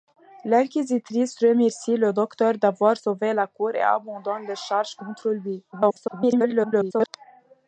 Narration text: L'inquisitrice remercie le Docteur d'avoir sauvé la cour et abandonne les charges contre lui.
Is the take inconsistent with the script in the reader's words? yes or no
yes